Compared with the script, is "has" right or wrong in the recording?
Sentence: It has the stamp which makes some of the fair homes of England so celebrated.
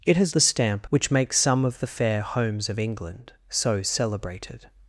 right